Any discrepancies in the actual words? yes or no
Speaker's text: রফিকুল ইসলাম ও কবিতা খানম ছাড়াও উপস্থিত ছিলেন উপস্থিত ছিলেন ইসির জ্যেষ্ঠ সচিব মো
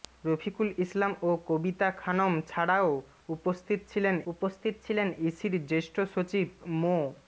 no